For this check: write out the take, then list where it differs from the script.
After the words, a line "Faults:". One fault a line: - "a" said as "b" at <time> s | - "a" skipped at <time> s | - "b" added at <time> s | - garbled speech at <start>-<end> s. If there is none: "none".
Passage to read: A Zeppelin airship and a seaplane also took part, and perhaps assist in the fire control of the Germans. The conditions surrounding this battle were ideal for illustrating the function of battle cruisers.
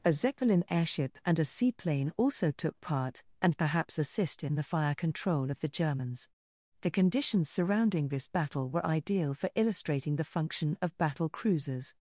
A Zeppelin airship and a seaplane also took part, and perhaps assist in the fire control of the Germans. The conditions surrounding this battle were ideal for illustrating the function of battle cruisers.
Faults:
none